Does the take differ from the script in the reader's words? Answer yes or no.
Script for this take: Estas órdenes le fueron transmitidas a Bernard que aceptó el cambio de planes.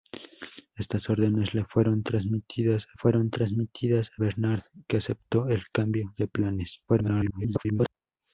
yes